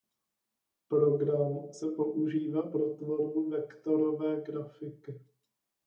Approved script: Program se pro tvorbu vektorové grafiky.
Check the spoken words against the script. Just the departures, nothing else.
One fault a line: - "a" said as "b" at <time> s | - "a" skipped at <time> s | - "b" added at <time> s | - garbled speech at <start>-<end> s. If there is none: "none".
- "používá" added at 2.0 s